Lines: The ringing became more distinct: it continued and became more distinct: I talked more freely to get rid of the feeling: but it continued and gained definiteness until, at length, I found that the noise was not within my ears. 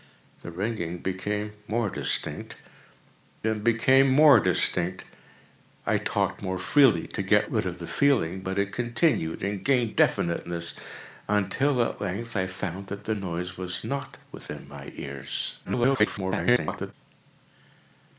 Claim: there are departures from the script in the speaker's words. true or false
true